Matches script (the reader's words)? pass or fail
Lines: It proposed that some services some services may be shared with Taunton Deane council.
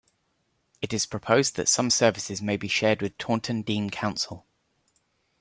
fail